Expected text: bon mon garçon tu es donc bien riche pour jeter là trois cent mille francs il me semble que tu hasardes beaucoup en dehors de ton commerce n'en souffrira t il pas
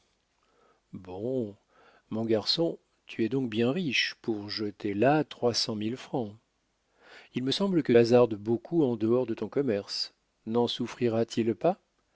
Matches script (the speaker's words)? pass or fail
fail